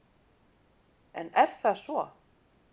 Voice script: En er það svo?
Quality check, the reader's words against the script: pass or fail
pass